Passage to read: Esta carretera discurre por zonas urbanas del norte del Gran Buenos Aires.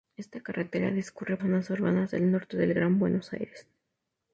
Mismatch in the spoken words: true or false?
true